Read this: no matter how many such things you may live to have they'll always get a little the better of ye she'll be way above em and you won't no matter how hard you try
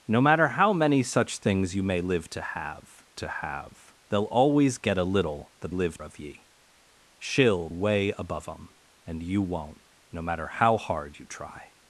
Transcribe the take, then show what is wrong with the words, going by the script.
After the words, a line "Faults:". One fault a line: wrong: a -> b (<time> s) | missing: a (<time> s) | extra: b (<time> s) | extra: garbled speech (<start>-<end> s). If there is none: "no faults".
no matter how many such things you may live to have to have they'll always get a little the live of ye she'll way above em and you won't no matter how hard you try
Faults:
extra: to have (3.2 s)
wrong: better -> live (5.7 s)
missing: be (7.7 s)